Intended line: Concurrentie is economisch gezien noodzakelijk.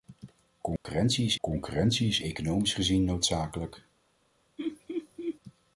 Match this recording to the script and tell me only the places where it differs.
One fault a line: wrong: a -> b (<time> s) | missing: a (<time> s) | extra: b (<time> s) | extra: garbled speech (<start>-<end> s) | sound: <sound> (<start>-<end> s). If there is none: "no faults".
sound: dropout (0.8-0.8 s)
extra: concurrentie is (1.4 s)
sound: laugh (4.6-5.4 s)